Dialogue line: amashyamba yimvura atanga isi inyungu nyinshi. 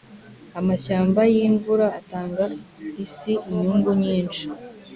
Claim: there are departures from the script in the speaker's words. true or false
false